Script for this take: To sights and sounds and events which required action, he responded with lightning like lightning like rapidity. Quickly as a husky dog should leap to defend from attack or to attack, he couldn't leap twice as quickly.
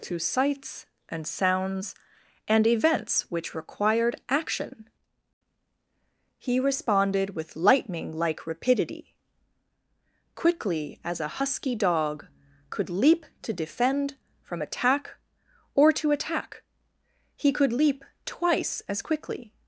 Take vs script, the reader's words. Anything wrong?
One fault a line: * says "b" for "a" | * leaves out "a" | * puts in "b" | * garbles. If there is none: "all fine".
* leaves out "lightning like"
* says "could" for "should"
* says "could" for "couldn't"